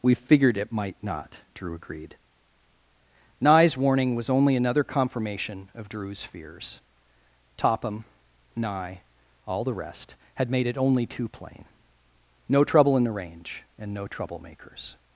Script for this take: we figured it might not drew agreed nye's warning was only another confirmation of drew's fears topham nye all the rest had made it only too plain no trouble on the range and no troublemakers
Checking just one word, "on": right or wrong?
wrong